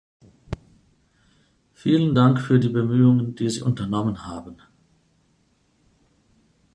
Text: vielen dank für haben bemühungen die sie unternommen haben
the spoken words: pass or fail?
fail